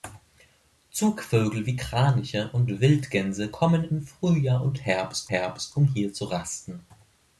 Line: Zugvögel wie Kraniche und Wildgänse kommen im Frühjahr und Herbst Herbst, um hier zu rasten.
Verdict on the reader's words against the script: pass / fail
pass